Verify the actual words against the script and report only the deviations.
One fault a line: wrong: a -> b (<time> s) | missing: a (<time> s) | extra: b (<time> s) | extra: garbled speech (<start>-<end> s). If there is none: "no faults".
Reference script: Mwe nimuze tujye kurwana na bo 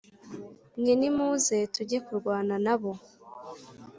no faults